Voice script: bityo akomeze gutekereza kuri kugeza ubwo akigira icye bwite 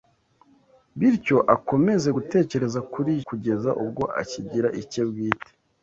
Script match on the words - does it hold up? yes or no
yes